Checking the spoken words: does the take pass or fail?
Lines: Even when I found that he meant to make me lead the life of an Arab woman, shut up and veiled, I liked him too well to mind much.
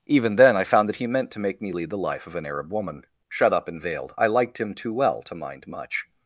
fail